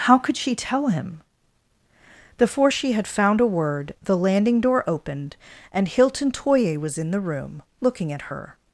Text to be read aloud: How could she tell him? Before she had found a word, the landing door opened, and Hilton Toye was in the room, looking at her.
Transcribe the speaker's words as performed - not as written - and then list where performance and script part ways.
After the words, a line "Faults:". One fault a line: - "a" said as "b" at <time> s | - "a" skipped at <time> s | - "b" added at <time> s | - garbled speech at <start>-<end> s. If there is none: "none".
How could she tell him? Before she had found a word, the landing door opened, and Hilton Toye was in the room, looking at her.
Faults:
none